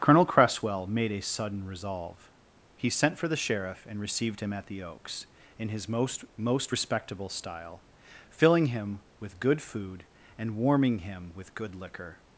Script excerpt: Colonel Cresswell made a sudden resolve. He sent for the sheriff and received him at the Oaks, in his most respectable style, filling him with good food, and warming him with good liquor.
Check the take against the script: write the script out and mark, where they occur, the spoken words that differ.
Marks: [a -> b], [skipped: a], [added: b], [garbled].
Colonel Cresswell made a sudden resolve. He sent for the sheriff and received him at the Oaks, in his most [added: most] respectable style, filling him with good food, and warming him with good liquor.